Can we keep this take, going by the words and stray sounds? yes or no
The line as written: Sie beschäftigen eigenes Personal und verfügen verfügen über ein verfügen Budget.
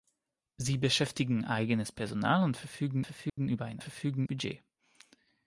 no